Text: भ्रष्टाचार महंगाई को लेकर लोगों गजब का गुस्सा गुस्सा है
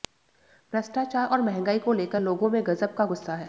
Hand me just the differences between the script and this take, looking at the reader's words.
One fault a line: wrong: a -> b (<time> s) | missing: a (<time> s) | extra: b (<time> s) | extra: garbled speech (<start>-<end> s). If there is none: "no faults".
extra: और (1.3 s)
extra: में (2.5 s)
missing: गुस्सा (3.3 s)